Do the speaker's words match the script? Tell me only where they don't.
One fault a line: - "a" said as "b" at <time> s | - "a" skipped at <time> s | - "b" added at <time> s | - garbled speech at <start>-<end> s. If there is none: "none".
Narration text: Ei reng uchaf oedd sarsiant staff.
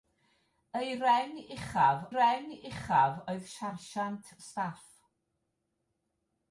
- "reng uchaf" added at 2.1 s